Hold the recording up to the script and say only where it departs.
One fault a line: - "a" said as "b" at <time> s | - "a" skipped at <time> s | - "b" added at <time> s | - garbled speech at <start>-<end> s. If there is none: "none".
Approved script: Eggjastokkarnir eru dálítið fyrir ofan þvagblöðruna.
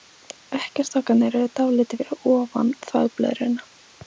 none